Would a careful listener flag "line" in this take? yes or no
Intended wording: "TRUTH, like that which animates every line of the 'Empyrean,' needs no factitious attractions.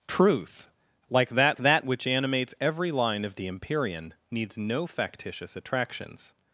no